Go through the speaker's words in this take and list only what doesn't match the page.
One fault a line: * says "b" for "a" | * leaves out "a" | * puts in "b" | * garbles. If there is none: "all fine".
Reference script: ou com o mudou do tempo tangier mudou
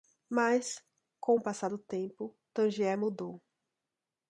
* says "mas" for "ou"
* says "passar" for "mudou"